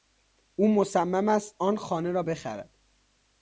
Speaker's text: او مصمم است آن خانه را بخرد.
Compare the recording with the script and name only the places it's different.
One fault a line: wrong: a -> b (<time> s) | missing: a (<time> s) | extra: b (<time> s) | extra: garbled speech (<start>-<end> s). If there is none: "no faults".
no faults